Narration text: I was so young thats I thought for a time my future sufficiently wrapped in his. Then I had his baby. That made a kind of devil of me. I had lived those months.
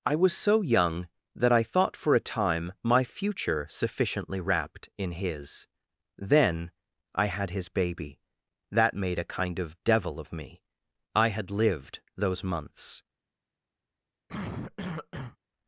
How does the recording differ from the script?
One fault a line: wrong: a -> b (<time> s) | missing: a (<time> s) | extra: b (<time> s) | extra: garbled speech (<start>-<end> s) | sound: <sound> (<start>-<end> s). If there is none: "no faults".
wrong: thats -> that (1.4 s)
sound: cough (14.3-15.4 s)